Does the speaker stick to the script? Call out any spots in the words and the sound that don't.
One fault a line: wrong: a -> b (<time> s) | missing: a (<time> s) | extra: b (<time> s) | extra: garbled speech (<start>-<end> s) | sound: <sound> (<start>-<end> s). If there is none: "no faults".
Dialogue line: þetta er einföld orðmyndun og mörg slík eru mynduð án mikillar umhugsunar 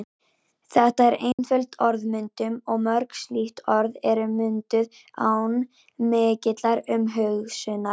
sound: dropout (1.3-1.4 s)
extra: orð (3.8 s)